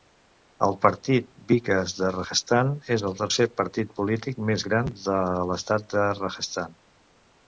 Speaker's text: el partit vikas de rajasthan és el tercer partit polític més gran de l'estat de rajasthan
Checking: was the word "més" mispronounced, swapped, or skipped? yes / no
no